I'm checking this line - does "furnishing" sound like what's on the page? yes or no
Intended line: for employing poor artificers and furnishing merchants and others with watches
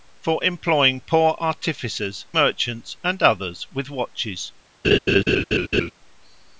no